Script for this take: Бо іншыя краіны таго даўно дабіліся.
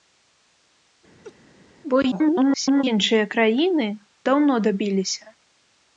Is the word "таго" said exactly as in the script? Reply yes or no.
no